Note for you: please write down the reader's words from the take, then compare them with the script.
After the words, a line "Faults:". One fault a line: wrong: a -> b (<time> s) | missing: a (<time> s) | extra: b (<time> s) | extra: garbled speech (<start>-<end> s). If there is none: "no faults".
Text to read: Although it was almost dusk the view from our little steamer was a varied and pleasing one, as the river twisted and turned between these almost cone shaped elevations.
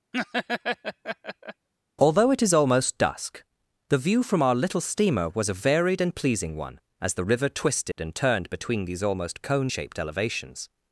Although it is almost dusk the view from our little steamer was a varied and pleasing one, as the river twisted and turned between these almost cone shaped elevations.
Faults:
wrong: was -> is (2.4 s)